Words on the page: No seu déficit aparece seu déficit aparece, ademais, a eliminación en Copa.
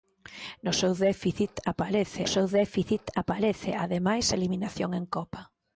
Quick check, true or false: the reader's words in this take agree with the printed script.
true